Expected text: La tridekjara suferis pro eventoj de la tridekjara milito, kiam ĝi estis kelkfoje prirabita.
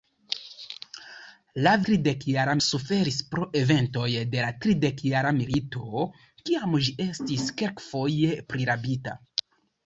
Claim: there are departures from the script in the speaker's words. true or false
false